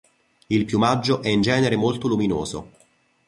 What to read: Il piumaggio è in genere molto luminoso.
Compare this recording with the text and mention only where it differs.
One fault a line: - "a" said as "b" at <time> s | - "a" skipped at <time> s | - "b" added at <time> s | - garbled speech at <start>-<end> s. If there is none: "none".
none